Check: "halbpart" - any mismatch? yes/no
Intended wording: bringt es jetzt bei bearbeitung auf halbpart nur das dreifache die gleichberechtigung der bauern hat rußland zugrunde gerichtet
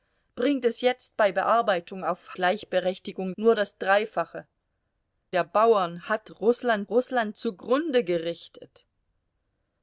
yes